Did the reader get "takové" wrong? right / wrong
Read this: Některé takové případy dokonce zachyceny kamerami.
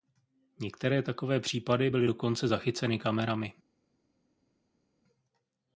right